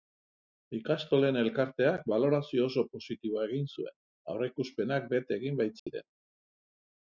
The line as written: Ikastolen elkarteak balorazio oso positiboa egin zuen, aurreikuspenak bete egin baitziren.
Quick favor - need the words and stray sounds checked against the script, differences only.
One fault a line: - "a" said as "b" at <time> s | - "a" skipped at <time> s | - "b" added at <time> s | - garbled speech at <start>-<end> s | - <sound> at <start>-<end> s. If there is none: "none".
- dropout at 5.8-5.9 s